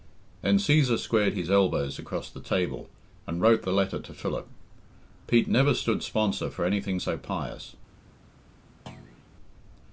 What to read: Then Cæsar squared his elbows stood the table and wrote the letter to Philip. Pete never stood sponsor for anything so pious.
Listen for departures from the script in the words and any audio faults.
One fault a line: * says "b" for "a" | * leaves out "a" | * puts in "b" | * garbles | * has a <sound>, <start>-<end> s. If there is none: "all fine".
* says "across" for "stood"
* has a thud, 8.9-9.3 s